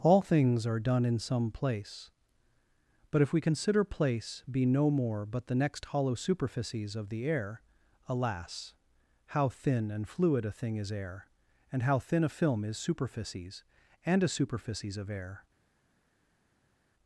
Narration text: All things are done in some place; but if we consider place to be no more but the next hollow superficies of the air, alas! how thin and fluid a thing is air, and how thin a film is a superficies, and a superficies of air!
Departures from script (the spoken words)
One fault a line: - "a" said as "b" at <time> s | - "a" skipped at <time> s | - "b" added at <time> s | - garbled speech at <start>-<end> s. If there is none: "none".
- "to" skipped at 4.4 s
- "a" skipped at 12.8 s